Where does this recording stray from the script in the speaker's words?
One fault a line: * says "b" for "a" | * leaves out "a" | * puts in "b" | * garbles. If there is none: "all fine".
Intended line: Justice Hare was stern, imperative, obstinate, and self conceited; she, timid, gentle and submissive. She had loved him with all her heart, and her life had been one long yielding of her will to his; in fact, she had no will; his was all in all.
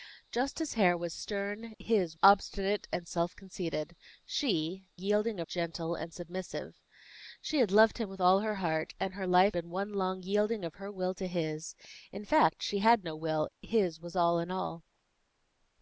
* says "his" for "imperative"
* says "yielding" for "timid"
* leaves out "had"